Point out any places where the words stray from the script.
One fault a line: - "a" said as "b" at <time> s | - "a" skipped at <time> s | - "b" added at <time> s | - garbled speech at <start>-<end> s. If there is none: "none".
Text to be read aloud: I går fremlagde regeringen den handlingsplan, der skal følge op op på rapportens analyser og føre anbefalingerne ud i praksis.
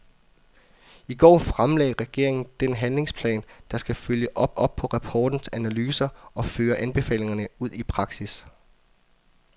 none